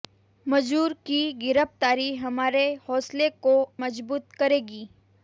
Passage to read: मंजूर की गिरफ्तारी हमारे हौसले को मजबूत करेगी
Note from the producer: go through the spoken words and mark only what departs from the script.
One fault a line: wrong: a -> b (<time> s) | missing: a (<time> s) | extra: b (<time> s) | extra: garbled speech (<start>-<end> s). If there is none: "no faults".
no faults